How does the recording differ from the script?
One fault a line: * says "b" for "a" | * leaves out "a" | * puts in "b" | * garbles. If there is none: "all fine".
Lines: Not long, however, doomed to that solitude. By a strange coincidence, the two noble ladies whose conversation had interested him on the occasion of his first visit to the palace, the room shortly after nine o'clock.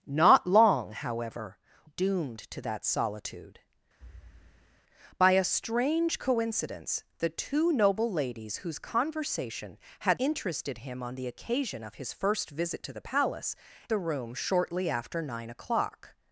all fine